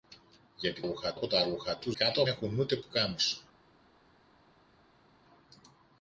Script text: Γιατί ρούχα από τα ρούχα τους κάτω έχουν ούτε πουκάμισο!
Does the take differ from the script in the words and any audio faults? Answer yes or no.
no